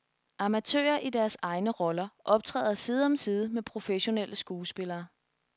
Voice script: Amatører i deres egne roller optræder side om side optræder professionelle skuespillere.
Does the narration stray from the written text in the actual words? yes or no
yes